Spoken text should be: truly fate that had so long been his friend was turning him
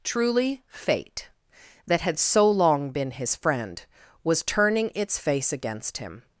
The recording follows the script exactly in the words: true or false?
false